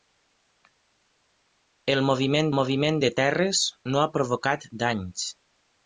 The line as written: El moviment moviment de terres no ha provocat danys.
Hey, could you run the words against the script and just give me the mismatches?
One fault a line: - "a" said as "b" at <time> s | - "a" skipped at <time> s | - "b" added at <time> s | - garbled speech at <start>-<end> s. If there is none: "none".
none